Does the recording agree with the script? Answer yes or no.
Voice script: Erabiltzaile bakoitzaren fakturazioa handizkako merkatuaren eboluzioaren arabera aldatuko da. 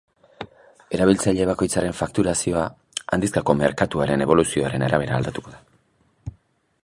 yes